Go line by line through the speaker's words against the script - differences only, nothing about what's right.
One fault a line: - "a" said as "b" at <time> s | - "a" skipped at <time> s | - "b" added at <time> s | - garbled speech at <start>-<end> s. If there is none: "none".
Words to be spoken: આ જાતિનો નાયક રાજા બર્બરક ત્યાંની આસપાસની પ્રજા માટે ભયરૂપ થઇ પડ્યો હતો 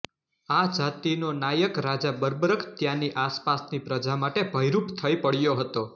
none